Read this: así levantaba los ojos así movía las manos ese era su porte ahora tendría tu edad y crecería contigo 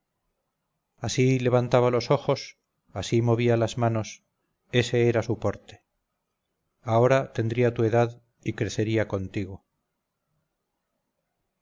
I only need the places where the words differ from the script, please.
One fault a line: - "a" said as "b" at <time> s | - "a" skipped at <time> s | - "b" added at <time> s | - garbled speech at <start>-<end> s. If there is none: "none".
none